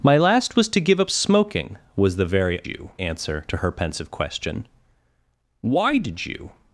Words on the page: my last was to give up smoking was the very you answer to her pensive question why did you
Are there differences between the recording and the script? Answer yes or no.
no